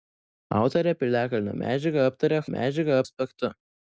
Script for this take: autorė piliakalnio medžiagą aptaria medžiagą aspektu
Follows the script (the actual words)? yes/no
yes